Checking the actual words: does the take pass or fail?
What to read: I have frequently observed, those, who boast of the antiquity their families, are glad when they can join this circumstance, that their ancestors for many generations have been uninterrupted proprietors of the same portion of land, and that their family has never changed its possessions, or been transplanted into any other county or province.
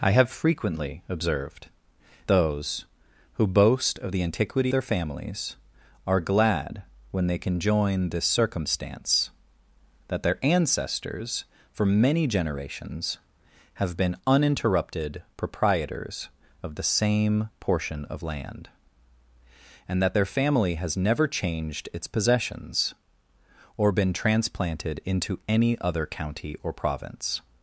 pass